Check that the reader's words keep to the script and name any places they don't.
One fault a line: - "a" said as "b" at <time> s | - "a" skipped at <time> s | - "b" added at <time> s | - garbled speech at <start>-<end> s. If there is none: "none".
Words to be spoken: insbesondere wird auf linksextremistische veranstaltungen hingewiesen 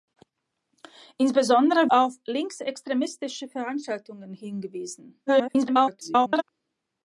- "wird" skipped at 1.9 s
- garbled speech at 5.3-6.4 s